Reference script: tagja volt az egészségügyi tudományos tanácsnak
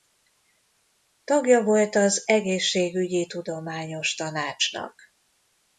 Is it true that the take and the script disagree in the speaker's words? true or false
false